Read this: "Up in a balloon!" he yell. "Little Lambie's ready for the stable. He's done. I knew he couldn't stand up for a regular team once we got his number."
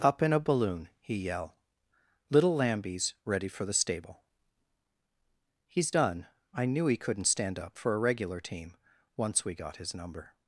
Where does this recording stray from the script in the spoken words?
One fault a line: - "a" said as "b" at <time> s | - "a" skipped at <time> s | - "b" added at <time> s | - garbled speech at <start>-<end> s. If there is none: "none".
none